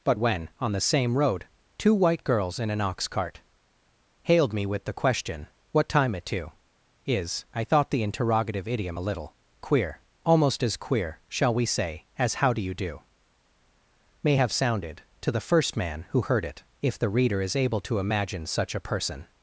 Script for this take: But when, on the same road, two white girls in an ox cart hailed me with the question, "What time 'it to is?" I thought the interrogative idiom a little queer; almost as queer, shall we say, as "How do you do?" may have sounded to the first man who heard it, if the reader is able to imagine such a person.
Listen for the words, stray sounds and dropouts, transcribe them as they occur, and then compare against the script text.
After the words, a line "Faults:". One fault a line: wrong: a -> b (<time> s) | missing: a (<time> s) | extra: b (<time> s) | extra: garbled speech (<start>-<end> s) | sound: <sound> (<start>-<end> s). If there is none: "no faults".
But when, on the same road, two white girls in an ox cart hailed me with the question, "What time 'it to is?" I thought the interrogative idiom a little queer; almost as queer, shall we say, as "How do you do?" may have sounded to the first man who heard it, if the reader is able to imagine such a person.
Faults:
no faults